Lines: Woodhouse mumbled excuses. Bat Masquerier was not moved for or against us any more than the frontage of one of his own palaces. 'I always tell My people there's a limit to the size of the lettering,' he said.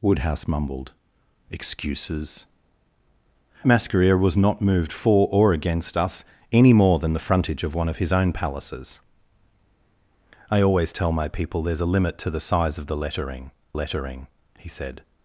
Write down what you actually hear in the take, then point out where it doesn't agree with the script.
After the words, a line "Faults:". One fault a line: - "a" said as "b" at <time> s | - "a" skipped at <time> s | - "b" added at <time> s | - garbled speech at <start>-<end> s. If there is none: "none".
Woodhouse mumbled excuses. Masquerier was not moved for or against us any more than the frontage of one of his own palaces. 'I always tell My people there's a limit to the size of the lettering lettering,' he said.
Faults:
- "Bat" skipped at 2.5 s
- "lettering" added at 13.7 s